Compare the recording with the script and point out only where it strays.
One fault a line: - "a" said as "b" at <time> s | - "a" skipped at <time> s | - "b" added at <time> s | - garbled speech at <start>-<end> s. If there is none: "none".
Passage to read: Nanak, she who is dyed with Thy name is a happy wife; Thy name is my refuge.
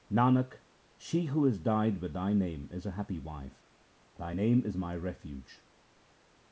none